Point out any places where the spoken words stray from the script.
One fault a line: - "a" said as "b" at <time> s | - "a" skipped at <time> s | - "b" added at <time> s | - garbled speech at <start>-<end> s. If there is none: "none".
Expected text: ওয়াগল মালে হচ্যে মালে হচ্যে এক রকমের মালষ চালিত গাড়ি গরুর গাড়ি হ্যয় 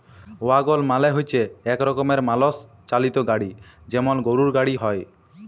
- "মালে হচ্যে" skipped at 1.4 s
- "যেমল" added at 3.9 s